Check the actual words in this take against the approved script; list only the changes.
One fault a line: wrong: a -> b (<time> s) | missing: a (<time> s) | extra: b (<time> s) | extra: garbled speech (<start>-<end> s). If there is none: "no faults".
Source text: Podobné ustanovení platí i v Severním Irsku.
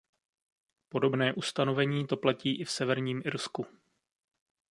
extra: to (2.1 s)